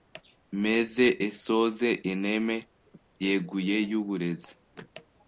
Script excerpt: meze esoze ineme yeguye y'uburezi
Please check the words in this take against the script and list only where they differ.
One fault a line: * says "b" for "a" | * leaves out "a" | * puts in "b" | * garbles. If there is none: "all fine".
all fine